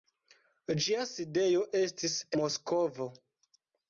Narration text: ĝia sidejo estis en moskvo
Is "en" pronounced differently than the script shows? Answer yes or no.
yes